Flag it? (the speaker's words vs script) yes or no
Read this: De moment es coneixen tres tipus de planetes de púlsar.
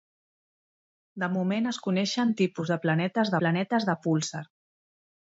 yes